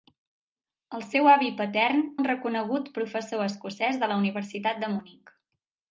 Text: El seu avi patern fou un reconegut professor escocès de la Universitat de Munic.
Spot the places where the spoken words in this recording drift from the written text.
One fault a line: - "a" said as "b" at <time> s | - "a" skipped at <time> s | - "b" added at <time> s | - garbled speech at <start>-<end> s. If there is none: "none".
- "fou" skipped at 2.0 s